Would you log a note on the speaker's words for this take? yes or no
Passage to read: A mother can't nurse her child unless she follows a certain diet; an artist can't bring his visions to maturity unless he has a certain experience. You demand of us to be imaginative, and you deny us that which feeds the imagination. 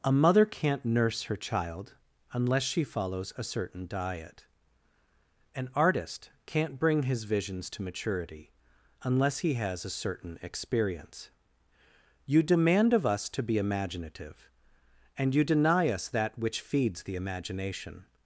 no